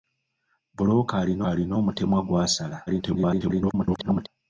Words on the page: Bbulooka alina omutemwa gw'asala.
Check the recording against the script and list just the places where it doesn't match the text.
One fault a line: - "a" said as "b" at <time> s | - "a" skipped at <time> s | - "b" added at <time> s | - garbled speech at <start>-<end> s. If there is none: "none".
- "alina" added at 1.5 s
- garbled speech at 2.9-4.3 s